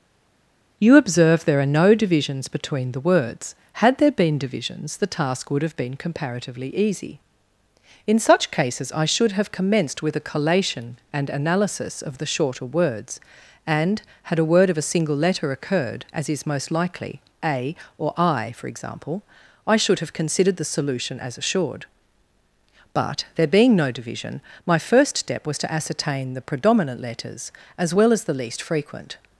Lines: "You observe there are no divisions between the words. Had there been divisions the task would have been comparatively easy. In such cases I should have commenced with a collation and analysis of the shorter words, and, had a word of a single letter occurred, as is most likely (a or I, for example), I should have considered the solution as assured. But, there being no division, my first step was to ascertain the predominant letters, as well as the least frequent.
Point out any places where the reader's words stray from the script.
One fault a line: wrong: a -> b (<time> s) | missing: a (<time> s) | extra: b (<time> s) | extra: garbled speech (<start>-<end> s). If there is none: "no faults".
no faults